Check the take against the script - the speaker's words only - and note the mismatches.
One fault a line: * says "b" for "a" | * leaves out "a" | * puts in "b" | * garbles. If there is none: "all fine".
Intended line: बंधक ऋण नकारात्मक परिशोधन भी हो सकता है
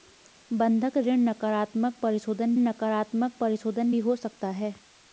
* puts in "नकारात्मक परिशोधन"